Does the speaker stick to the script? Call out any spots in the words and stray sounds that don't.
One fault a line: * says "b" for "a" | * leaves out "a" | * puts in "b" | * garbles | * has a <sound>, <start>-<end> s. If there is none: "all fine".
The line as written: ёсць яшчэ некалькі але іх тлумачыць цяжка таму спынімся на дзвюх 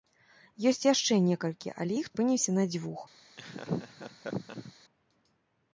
* leaves out "тлумачыць цяжка таму"
* has a laugh, 3.4-4.7 s